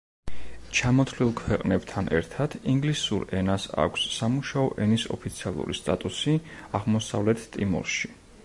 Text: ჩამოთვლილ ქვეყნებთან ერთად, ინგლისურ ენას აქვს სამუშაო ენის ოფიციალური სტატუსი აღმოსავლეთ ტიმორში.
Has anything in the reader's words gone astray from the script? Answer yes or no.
no